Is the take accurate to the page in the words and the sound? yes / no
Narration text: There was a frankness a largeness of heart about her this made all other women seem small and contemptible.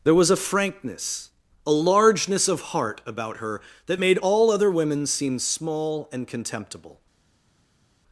no